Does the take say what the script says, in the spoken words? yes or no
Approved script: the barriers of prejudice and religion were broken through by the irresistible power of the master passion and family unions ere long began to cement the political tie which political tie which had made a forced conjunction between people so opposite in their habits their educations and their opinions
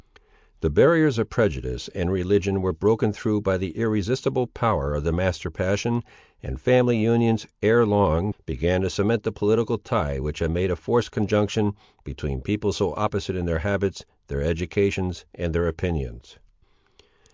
no